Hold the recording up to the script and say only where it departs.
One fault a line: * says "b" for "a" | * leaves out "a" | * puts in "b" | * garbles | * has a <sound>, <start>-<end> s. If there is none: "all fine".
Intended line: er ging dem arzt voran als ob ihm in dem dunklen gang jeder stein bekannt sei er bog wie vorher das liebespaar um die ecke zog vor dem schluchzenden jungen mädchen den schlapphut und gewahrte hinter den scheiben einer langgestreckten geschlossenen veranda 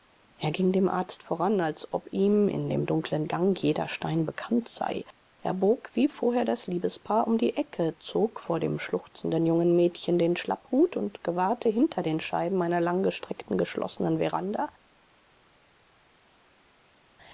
all fine